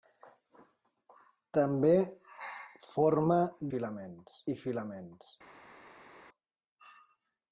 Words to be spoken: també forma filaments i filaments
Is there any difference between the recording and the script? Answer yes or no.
no